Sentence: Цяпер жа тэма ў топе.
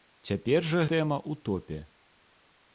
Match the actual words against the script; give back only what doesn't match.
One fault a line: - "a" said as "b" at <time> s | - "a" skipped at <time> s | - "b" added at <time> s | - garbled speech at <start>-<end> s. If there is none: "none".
none